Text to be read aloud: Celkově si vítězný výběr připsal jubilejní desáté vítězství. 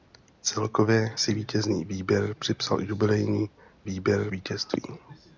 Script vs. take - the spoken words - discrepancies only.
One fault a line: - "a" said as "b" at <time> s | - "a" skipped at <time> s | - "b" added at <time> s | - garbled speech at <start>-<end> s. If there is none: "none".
- "desáté" said as "výběr" at 3.8 s